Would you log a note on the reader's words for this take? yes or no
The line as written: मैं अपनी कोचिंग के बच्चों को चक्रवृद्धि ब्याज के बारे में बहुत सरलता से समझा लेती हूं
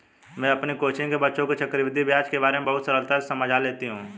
no